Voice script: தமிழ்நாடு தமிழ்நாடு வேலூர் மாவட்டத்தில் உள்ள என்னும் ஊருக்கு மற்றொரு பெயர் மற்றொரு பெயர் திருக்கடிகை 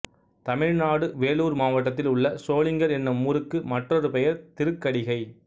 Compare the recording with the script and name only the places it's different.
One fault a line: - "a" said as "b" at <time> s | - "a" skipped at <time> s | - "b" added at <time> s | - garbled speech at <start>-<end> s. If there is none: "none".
- "தமிழ்நாடு" skipped at 1.1 s
- "சோளிங்கர்" added at 2.4 s
- "மற்றொரு பெயர்" skipped at 4.4 s